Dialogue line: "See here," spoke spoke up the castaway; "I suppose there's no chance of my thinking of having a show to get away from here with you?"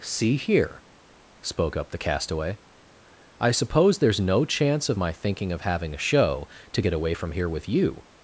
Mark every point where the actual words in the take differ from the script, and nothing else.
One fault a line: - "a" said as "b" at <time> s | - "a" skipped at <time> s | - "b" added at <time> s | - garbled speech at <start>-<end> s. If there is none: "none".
- "spoke" skipped at 1.8 s